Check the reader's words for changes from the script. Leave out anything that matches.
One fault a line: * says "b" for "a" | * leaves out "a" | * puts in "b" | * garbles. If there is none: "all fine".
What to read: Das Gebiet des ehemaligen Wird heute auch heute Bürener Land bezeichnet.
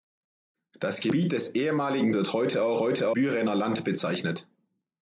all fine